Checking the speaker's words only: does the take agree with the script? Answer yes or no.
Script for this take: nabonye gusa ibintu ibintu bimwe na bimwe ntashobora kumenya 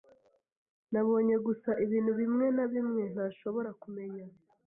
no